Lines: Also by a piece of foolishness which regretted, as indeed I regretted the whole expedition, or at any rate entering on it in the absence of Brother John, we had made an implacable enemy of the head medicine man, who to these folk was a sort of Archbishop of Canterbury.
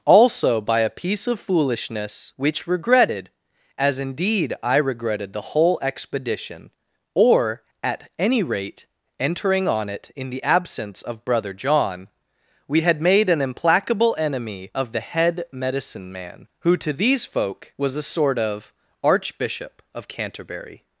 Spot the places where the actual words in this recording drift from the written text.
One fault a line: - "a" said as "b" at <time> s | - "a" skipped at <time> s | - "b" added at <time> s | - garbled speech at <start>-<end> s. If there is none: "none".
none